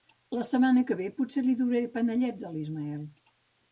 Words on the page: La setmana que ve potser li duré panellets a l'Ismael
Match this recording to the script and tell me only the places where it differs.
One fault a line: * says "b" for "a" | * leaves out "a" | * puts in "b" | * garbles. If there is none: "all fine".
all fine